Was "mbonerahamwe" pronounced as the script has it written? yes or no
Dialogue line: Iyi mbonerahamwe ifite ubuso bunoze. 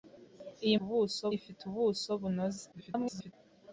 no